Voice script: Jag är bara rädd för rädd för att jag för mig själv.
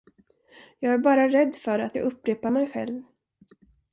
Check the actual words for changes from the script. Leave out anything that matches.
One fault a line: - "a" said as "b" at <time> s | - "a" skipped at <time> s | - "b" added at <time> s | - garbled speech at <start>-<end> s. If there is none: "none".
- "rädd för" skipped at 1.8 s
- "för" said as "upprepar" at 2.0 s